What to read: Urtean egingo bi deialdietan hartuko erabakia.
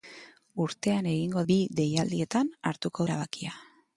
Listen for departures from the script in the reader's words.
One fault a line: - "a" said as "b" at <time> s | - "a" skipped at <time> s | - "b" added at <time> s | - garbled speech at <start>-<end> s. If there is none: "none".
none